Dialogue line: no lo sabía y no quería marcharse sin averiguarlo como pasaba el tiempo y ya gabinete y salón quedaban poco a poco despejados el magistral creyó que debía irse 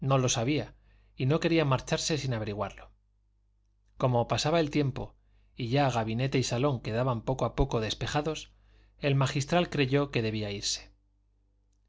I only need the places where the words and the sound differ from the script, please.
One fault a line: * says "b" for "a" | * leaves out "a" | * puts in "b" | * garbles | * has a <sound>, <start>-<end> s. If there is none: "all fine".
all fine